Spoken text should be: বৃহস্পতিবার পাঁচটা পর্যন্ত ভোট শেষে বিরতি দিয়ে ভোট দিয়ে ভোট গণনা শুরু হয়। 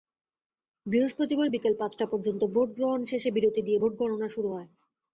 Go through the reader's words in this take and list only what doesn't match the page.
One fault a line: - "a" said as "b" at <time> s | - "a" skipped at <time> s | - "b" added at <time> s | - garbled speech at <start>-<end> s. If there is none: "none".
- "বিকেল" added at 1.5 s
- "গ্রহণ" added at 2.7 s
- "দিয়ে ভোট" skipped at 3.9 s